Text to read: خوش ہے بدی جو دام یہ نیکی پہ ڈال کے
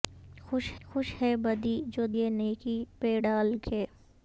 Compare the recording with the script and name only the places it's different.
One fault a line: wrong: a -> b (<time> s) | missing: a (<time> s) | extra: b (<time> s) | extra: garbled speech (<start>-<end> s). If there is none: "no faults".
extra: خوش (0.8 s)
missing: دام (2.1 s)